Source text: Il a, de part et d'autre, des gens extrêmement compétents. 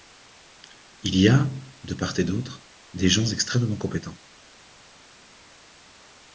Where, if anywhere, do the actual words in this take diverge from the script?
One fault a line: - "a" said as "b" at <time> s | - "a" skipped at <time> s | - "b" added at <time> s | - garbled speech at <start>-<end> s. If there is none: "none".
- "y" added at 1.1 s